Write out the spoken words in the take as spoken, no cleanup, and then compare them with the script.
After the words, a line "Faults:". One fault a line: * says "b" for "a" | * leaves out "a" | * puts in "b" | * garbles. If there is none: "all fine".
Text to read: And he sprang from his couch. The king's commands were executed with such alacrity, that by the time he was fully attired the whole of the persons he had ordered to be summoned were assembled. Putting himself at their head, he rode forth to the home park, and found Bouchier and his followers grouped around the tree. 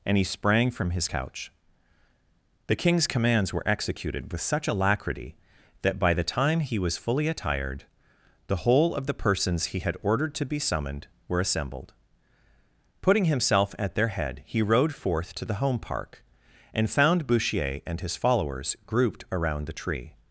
And he sprang from his couch. The king's commands were executed with such alacrity, that by the time he was fully attired the whole of the persons he had ordered to be summoned were assembled. Putting himself at their head, he rode forth to the home park, and found Bouchier and his followers grouped around the tree.
Faults:
all fine